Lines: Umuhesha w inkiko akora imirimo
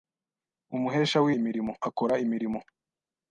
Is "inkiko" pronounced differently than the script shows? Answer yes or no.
yes